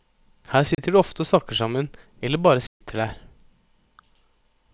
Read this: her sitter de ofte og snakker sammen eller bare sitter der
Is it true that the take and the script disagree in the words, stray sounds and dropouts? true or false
true